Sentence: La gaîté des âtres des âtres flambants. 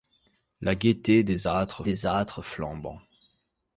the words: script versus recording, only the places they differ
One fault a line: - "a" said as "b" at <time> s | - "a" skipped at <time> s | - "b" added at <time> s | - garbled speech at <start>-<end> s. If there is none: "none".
none